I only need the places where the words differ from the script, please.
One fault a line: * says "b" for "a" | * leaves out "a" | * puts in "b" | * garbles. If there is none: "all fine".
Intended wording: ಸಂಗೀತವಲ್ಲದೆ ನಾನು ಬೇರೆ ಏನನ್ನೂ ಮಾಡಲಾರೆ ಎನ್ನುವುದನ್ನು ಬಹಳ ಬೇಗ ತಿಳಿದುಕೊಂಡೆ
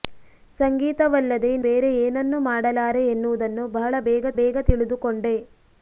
* leaves out "ನಾನು"
* puts in "ಬೇಗ"